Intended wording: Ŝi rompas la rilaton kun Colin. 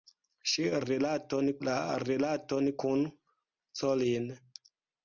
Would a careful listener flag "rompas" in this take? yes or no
yes